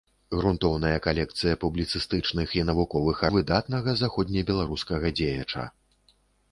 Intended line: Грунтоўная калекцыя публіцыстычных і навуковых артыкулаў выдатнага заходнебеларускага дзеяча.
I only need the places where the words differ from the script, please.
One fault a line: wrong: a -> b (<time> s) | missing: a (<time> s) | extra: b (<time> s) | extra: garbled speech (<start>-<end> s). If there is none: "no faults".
missing: артыкулаў (3.2 s)